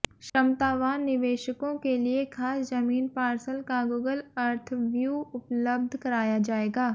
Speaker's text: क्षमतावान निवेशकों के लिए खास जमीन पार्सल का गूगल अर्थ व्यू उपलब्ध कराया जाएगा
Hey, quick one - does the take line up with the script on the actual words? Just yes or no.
yes